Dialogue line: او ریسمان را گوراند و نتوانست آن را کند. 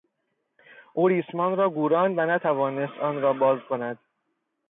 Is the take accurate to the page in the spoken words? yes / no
no